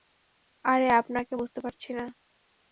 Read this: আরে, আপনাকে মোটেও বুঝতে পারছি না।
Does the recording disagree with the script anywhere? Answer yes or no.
yes